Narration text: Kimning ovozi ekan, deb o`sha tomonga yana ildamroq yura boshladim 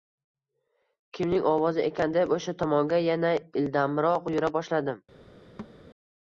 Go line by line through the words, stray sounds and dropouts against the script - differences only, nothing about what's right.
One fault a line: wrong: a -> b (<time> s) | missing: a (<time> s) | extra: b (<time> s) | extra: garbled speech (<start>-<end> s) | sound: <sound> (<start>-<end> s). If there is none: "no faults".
sound: thud (5.6-5.8 s)